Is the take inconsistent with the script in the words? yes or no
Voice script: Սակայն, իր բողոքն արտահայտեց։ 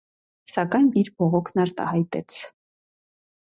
no